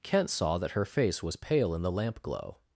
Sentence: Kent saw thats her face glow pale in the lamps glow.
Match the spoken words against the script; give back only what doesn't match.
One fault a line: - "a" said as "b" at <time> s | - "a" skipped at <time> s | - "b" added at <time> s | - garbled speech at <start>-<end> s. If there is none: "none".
- "thats" said as "that" at 0.6 s
- "glow" said as "was" at 1.2 s
- "lamps" said as "lamp" at 1.9 s